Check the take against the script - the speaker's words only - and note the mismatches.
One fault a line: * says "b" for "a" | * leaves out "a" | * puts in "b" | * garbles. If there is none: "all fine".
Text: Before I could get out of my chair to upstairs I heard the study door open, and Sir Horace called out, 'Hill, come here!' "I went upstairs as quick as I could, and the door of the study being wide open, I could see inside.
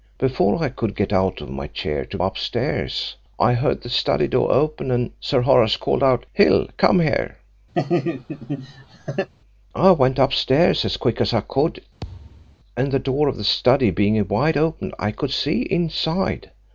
all fine